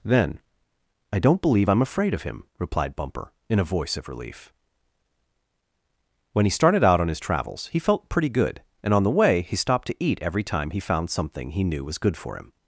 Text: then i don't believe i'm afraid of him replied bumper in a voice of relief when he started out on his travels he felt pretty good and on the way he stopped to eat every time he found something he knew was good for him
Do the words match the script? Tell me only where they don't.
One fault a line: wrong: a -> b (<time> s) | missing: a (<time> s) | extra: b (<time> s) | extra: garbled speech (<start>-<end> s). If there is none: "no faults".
no faults